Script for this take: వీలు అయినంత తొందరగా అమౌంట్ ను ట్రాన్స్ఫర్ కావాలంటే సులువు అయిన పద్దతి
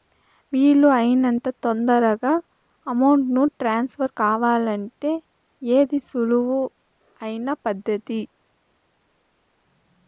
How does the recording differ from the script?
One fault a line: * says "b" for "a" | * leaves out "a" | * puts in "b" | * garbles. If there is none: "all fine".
* puts in "ఏది"